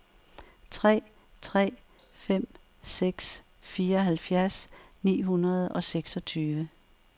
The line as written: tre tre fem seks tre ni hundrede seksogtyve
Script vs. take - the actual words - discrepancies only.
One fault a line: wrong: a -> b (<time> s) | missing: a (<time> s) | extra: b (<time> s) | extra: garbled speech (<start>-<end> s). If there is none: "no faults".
wrong: tre -> fireoghalvfjerds (3.6 s)
extra: og (5.7 s)